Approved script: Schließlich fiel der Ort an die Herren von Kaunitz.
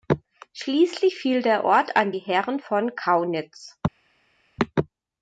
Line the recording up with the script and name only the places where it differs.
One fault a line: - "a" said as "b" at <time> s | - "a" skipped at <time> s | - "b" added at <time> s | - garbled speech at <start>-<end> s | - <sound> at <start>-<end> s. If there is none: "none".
none